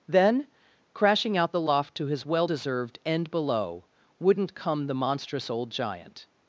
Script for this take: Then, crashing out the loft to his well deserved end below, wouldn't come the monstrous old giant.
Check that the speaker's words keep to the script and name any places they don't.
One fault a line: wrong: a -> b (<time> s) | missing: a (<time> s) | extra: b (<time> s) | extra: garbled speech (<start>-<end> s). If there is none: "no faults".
no faults